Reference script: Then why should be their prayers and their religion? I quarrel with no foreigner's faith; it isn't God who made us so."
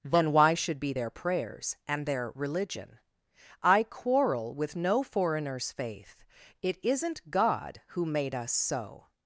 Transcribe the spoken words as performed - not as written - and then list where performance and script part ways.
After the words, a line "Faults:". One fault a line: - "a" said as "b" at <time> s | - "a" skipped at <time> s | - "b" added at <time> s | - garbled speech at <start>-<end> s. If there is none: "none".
Then why should be their prayers and their religion? I quarrel with no foreigner's faith; it isn't God who made us so."
Faults:
none